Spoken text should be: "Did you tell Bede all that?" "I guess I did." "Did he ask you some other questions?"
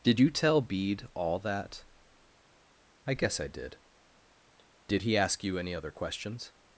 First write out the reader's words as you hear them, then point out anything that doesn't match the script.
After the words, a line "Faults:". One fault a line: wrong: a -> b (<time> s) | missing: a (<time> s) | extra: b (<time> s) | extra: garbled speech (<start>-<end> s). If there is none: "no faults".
"Did you tell Bede all that?" "I guess I did." "Did he ask you any other questions?"
Faults:
wrong: some -> any (5.6 s)